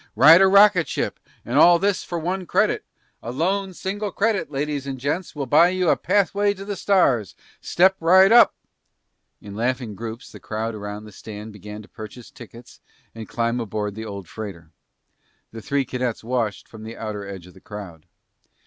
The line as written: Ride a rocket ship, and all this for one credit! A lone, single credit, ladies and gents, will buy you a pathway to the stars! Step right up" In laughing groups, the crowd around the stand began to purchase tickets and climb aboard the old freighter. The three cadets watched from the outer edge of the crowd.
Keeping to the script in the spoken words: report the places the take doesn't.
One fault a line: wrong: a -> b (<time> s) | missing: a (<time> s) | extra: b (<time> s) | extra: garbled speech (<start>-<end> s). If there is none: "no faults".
no faults